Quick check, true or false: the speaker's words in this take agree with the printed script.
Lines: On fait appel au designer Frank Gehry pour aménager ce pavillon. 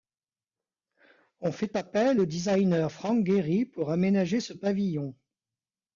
true